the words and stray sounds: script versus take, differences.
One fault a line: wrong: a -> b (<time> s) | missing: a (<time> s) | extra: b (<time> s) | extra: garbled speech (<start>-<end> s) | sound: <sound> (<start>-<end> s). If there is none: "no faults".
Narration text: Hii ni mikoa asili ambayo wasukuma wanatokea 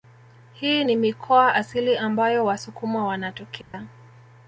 sound: dropout (3.6-3.7 s)